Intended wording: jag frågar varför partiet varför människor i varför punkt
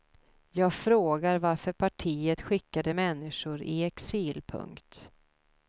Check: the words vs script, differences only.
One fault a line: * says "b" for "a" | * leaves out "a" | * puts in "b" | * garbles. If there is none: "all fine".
* says "skickade" for "varför"
* says "exil" for "varför"